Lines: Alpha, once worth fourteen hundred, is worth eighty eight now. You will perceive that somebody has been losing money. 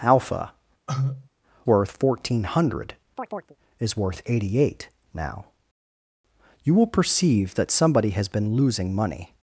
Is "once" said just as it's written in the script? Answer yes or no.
no